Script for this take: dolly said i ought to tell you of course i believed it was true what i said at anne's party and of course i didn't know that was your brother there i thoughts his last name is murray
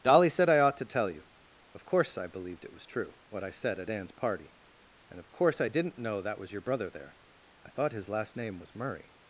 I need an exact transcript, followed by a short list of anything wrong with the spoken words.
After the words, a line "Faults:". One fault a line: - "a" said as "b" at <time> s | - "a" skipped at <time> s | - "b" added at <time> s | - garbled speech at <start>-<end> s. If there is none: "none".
dolly said i ought to tell you of course i believed it was true what i said at anne's party and of course i didn't know that was your brother there i thought his last name was murray
Faults:
- "thoughts" said as "thought" at 7.7 s
- "is" said as "was" at 8.6 s